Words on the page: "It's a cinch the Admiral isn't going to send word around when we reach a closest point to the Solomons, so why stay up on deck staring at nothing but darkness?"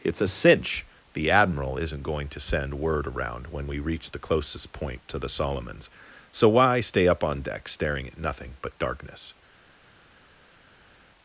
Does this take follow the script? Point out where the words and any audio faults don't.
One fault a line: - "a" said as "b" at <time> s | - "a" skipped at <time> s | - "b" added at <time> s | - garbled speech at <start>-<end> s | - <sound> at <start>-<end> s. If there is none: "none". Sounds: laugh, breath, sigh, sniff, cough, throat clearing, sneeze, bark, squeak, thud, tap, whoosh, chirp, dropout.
- "a" said as "the" at 4.1 s